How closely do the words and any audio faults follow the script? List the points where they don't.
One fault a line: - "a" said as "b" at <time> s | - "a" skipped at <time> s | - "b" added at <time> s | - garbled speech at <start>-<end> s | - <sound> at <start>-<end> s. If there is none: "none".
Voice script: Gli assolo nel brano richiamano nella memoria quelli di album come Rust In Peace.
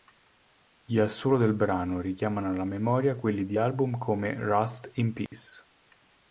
- "nel" said as "del" at 1.4 s
- "nella" said as "alla" at 2.5 s
- dropout at 5.3-5.3 s